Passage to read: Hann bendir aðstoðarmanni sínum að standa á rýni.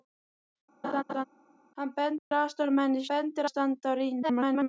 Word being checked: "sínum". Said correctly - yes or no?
no